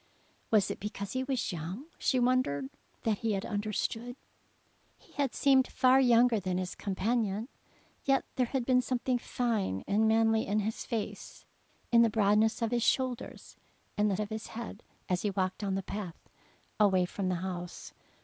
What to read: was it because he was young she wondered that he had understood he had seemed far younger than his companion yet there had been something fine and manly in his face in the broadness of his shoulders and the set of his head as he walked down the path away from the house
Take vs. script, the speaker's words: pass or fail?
fail